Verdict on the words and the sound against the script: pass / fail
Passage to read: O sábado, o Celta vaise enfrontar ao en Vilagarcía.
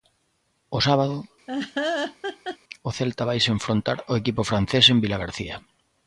fail